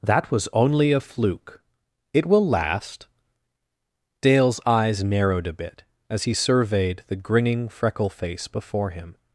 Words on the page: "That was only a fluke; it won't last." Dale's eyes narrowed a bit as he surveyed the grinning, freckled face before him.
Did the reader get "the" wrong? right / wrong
right